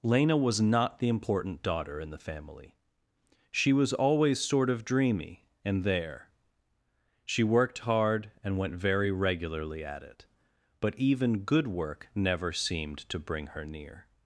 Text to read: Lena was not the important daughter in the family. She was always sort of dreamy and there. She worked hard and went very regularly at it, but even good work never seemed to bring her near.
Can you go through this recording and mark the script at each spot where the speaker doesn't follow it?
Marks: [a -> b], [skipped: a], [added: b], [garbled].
Lena was not the important daughter in the family. She was always sort of dreamy and there. She worked hard and went very regularly at it, but even good work never seemed to bring her near.